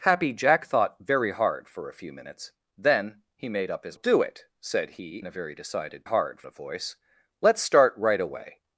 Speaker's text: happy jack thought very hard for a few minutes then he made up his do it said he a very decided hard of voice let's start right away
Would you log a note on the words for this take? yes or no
no